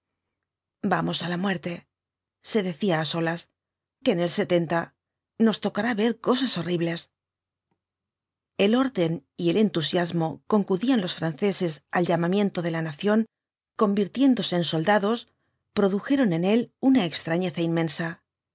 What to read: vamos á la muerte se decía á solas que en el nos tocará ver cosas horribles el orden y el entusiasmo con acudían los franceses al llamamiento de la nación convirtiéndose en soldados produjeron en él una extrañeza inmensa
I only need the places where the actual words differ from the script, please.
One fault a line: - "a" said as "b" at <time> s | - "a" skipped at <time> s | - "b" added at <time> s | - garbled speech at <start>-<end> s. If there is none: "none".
none